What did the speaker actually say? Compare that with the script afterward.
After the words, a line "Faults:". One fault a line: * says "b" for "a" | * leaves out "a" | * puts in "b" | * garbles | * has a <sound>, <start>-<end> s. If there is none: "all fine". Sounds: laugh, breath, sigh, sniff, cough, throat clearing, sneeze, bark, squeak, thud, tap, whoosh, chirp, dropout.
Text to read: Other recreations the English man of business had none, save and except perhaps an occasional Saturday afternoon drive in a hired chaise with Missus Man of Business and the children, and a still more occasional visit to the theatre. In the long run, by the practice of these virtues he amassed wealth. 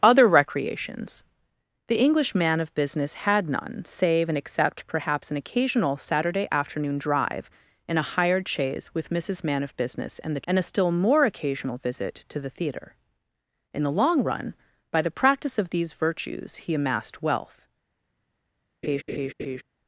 Other recreations the English man of business had none, save and except perhaps an occasional Saturday afternoon drive in a hired chaise with Missus Man of Business and the and a still more occasional visit to the theatre. In the long run, by the practice of these virtues he amassed wealth.
Faults:
* leaves out "children"
* has a laugh, 18.8-19.6 s